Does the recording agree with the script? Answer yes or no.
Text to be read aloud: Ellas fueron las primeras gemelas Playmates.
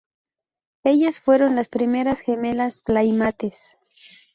yes